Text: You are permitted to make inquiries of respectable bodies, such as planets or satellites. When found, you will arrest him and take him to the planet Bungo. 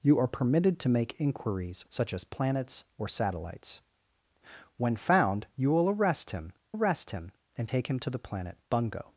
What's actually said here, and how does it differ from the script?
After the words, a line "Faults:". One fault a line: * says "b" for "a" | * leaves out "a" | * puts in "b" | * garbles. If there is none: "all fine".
You are permitted to make inquiries such as planets or satellites. When found, you will arrest him arrest him and take him to the planet Bungo.
Faults:
* leaves out "of respectable bodies"
* puts in "arrest him"